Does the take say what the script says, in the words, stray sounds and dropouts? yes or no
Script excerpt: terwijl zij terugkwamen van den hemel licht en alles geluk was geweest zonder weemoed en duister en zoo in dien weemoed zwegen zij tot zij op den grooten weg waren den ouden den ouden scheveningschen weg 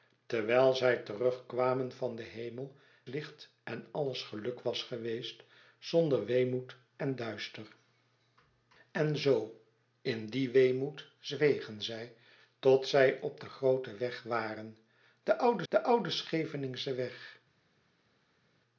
yes